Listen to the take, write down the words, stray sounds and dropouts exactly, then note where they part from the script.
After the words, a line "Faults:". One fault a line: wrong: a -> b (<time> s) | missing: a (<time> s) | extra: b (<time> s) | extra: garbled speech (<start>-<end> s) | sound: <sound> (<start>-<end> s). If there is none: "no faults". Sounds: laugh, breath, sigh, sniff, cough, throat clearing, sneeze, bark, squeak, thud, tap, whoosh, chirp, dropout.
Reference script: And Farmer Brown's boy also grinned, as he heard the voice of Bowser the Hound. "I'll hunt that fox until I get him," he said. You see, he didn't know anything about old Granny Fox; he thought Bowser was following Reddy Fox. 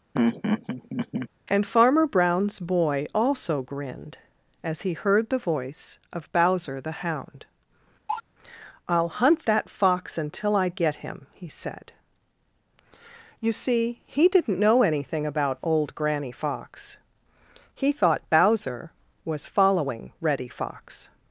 And Farmer Brown's boy also grinned, as he heard the voice of Bowser the Hound. "I'll hunt that fox until I get him," he said. You see, he didn't know anything about old Granny Fox; he thought Bowser was following Reddy Fox.
Faults:
sound: laugh (0.1-1.3 s)
sound: cough (8.1-8.2 s)